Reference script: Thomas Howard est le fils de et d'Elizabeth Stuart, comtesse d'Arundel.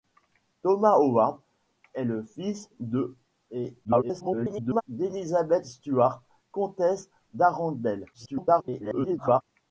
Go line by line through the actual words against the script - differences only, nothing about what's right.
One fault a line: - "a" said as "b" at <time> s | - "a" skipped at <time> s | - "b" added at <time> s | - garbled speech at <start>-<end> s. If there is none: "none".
- garbled speech at 3.8-4.8 s
- garbled speech at 8.1-9.4 s